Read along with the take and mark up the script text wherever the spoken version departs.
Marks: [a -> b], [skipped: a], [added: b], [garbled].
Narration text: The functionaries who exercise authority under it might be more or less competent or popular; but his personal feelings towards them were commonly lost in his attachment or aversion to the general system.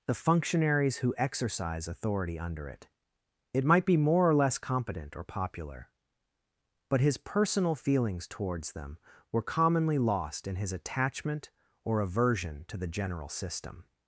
The functionaries who exercise authority under it [added: it] might be more or less competent or popular; but his personal feelings towards them were commonly lost in his attachment or aversion to the general system.